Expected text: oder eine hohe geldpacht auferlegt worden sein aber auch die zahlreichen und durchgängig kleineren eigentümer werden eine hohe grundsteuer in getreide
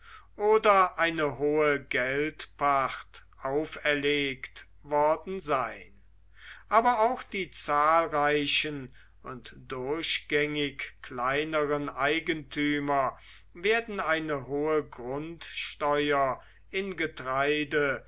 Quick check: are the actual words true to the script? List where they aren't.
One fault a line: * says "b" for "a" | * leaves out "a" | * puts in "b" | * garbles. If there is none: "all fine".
all fine